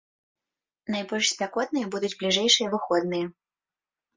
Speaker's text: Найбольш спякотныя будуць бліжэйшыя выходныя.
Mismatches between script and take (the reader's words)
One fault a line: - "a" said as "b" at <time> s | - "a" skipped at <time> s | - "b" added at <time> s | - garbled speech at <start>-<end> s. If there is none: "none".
none